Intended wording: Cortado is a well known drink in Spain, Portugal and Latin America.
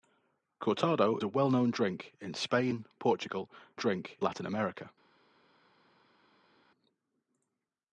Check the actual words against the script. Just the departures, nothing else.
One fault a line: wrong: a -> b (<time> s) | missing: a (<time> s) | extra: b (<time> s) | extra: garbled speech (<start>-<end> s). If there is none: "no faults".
missing: is (1.2 s)
wrong: and -> drink (3.8 s)